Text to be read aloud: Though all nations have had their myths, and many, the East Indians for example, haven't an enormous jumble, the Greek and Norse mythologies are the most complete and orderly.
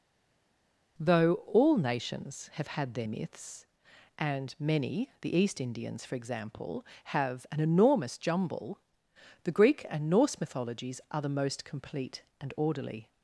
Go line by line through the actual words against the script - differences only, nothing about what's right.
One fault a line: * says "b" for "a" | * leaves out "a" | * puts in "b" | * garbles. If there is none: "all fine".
* says "have" for "haven't"